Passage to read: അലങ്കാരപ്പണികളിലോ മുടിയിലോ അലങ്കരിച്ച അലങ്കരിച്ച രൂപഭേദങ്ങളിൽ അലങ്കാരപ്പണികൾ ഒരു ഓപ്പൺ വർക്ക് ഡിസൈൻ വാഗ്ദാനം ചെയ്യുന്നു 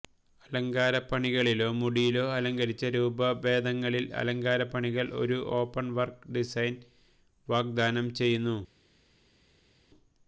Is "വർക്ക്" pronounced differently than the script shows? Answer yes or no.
no